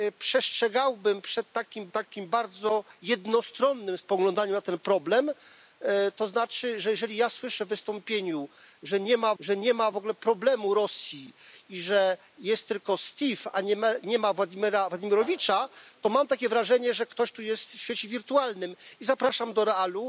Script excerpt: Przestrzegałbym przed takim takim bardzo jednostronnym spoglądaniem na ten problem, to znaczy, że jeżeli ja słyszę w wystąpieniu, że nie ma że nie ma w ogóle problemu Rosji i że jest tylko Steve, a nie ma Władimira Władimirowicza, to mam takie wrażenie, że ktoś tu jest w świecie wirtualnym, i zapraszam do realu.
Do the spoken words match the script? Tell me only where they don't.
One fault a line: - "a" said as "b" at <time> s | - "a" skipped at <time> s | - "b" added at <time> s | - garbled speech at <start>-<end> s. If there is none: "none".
none